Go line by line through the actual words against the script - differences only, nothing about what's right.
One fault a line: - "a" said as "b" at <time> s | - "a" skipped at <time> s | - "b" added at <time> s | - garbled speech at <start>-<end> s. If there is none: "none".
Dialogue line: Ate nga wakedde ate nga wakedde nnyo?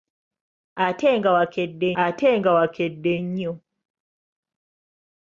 none